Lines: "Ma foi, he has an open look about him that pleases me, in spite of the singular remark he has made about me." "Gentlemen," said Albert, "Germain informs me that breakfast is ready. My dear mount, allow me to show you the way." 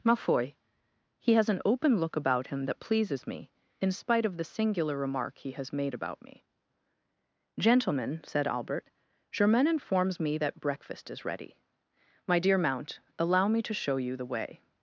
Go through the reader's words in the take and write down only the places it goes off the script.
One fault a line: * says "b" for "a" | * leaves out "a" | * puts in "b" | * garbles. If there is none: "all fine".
all fine